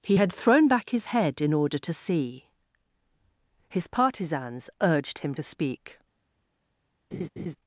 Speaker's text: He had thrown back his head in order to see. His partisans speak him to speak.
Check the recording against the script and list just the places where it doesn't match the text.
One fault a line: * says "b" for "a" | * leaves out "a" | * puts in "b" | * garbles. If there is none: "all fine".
* says "urged" for "speak"